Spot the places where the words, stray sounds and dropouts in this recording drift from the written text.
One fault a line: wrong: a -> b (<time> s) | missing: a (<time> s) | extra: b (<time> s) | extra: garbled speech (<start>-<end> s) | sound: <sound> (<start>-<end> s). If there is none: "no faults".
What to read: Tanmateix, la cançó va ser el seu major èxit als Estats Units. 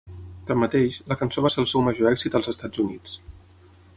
no faults